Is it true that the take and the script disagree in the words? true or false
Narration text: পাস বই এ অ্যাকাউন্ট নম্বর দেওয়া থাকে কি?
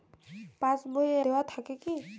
true